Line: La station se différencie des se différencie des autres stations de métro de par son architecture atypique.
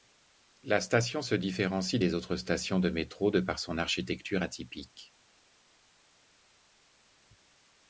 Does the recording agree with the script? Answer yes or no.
no